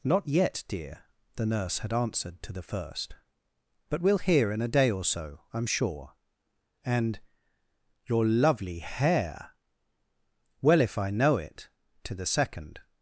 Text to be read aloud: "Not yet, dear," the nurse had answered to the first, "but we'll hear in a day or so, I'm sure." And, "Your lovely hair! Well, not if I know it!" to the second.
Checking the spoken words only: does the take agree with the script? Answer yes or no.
no